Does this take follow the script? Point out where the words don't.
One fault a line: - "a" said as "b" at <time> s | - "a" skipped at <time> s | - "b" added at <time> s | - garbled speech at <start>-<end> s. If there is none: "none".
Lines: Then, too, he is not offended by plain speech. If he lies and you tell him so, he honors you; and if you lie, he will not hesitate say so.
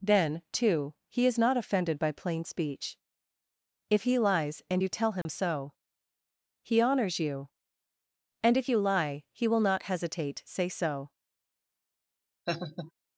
none